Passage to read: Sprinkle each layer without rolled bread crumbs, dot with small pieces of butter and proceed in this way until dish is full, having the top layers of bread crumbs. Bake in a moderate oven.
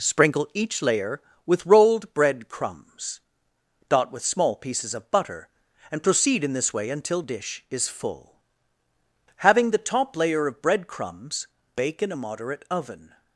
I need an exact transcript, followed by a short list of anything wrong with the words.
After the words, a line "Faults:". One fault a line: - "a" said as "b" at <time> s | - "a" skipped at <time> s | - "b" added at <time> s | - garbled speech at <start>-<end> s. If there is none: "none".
Sprinkle each layer with rolled bread crumbs, dot with small pieces of butter and proceed in this way until dish is full, having the top layer of bread crumbs. Bake in a moderate oven.
Faults:
- "without" said as "with" at 1.4 s
- "layers" said as "layer" at 10.1 s